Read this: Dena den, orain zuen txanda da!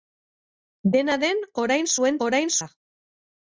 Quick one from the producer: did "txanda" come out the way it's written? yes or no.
no